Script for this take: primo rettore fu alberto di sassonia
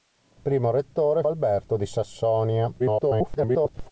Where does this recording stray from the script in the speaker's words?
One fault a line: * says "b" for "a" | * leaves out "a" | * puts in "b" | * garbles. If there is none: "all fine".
* leaves out "fu"
* garbles